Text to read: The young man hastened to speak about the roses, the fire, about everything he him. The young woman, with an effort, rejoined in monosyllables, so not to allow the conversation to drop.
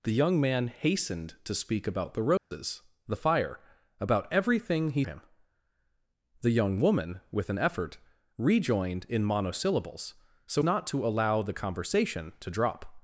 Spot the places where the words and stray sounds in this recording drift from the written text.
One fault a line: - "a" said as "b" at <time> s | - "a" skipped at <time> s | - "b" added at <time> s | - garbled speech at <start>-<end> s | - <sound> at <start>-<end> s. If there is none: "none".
- dropout at 2.4-2.5 s